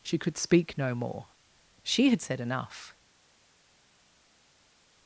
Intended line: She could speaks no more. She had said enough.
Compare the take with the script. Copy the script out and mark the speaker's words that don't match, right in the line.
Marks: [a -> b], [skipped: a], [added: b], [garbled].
She could [speaks -> speak] no more. She had said enough.